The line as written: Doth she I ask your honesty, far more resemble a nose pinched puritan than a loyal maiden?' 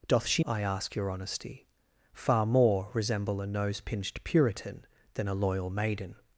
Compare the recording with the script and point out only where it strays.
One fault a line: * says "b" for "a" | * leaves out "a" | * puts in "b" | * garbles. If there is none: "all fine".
all fine